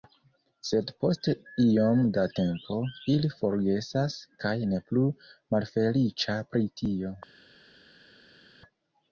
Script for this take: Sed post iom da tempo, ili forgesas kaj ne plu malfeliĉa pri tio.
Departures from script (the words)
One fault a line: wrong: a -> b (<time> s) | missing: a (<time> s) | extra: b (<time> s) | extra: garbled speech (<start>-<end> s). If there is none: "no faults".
no faults